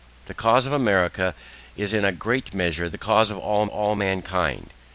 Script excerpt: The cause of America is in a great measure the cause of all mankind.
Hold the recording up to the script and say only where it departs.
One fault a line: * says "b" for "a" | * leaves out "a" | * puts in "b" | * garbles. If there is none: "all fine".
* puts in "all"